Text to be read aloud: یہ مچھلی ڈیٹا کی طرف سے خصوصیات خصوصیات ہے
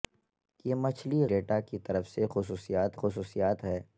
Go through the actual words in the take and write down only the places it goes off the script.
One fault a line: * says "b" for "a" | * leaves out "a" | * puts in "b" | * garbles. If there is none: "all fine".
all fine